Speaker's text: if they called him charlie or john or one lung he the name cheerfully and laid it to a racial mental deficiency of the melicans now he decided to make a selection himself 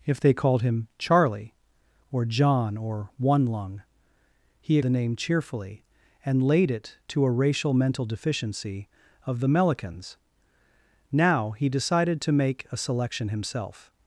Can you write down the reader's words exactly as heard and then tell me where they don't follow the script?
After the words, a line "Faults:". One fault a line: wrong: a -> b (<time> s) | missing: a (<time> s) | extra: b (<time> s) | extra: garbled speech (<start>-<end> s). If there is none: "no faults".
if they called him charlie or john or one lung he the name cheerfully and laid it to a racial mental deficiency of the melicans now he decided to make a selection himself
Faults:
no faults